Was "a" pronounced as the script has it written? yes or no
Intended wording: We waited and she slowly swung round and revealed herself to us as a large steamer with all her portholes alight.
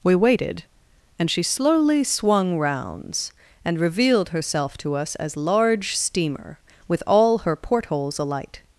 no